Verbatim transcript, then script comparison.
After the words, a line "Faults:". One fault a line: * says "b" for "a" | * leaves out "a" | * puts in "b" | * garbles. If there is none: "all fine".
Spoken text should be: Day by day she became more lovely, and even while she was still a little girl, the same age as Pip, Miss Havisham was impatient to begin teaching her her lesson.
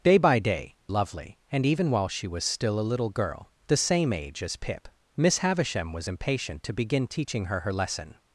Day by day lovely, and even while she was still a little girl, the same age as Pip, Miss Havisham was impatient to begin teaching her her lesson.
Faults:
* leaves out "she became more"